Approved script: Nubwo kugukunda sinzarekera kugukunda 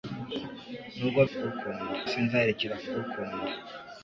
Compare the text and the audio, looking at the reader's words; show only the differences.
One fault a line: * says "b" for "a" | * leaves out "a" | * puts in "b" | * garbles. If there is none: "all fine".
all fine